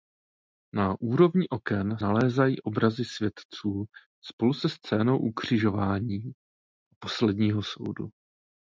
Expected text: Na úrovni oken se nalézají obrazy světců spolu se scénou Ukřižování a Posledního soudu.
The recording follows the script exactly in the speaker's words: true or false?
false